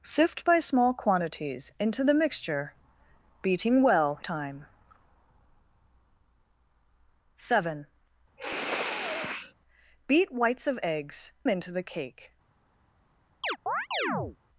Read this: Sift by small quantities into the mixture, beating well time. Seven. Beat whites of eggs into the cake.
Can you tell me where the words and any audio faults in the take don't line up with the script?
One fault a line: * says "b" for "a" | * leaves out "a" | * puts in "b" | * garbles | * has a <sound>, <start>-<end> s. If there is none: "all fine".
* has a sniff, 8.4-9.5 s
* has a chirp, 13.4-14.4 s